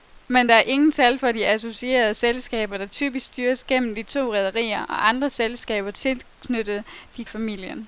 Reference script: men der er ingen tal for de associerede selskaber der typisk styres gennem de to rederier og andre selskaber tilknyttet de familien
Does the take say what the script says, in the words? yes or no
yes